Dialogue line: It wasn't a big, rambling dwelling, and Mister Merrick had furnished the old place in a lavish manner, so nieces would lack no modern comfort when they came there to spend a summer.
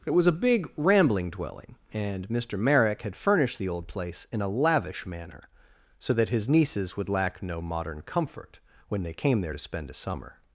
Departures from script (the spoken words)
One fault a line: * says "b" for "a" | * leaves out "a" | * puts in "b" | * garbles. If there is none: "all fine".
* says "was" for "wasn't"
* puts in "that his"